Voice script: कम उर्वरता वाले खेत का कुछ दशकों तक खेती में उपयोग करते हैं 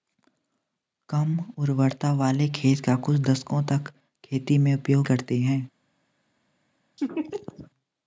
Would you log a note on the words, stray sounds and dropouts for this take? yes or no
yes